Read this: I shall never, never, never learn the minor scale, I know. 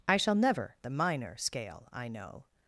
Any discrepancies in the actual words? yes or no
yes